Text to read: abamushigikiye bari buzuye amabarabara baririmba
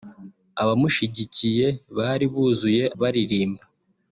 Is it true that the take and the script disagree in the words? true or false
true